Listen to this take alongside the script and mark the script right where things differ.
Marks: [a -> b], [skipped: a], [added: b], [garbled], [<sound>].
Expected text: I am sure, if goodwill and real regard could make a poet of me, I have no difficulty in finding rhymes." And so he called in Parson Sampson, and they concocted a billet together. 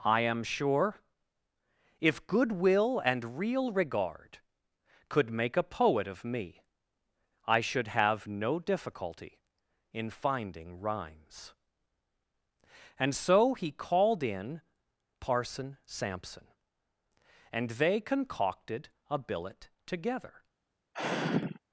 I am sure, if goodwill and real regard could make a poet of me, I [added: should] have no difficulty in finding rhymes." And so he called in Parson Sampson, and they concocted a billet together. [sigh]